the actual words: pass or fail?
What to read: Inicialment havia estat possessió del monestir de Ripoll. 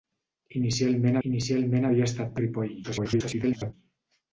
fail